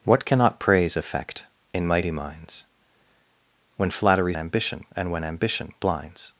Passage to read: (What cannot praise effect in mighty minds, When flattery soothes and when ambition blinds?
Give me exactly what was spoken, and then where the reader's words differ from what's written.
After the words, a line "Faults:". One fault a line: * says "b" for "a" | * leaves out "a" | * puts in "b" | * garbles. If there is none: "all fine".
(What cannot praise effect in mighty minds, When flattery ambition and when ambition blinds?
Faults:
* says "ambition" for "soothes"